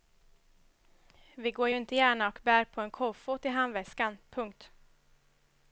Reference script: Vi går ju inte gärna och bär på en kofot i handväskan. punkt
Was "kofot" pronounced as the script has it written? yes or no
yes